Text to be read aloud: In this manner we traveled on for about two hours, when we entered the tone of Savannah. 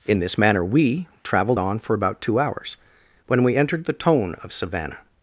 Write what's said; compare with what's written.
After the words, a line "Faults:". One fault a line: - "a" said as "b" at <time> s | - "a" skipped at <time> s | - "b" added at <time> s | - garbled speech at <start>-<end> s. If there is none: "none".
In this manner we traveled on for about two hours, when we entered the tone of Savannah.
Faults:
none